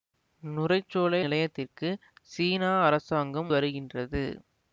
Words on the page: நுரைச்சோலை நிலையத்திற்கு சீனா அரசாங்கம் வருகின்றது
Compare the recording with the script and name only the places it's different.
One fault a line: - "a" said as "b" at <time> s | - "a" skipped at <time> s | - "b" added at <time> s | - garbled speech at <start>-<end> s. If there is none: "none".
none